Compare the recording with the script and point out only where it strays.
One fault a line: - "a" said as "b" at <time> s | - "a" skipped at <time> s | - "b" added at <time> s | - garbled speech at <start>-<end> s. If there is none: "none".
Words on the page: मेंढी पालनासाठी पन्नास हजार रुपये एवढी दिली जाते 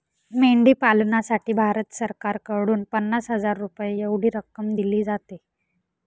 - "भारत सरकारकडून" added at 1.5 s
- "रक्कम" added at 4.3 s